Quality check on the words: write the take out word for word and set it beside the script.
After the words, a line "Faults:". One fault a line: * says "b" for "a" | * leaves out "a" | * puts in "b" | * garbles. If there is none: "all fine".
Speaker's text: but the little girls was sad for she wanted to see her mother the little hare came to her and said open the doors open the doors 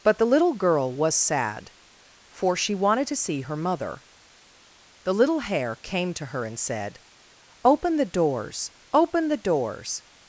but the little girl was sad for she wanted to see her mother the little hare came to her and said open the doors open the doors
Faults:
* says "girl" for "girls"